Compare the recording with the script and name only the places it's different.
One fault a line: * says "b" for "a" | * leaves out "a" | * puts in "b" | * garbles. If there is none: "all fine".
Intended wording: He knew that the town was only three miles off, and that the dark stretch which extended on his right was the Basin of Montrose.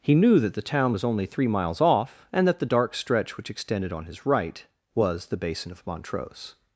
all fine